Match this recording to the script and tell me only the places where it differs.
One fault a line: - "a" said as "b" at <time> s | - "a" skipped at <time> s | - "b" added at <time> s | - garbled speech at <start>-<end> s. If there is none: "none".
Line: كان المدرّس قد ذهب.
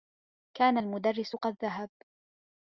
none